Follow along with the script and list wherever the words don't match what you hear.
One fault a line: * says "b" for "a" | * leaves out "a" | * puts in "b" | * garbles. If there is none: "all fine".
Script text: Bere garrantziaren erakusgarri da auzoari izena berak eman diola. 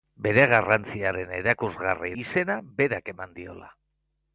* leaves out "da auzoari"